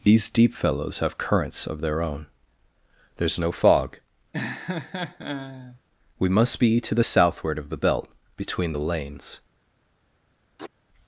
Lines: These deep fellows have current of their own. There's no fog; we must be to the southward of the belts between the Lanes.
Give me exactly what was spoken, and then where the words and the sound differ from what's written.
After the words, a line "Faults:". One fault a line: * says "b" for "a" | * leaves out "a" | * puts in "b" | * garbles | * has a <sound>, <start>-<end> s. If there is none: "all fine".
These deep fellows have currents of their own. There's no fog; we must be to the southward of the belt between the Lanes.
Faults:
* says "currents" for "current"
* has a laugh, 4.3-5.8 s
* says "belt" for "belts"
* has a sneeze, 10.6-10.7 s